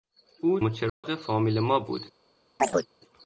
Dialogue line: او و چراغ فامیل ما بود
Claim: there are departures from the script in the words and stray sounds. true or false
true